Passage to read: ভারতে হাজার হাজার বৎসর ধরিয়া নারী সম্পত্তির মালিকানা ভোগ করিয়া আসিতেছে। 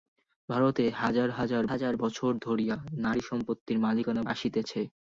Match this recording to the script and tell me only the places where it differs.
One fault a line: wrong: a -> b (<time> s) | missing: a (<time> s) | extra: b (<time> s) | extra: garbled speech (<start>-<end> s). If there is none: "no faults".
extra: হাজার (1.7 s)
missing: ভোগ করিয়া (4.2 s)